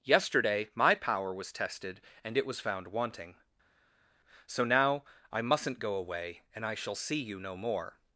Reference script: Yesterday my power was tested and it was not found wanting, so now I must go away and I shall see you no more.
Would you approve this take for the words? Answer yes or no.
no